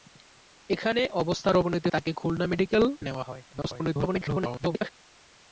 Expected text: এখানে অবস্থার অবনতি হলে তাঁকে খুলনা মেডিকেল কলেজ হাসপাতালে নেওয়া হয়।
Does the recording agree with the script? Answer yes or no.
no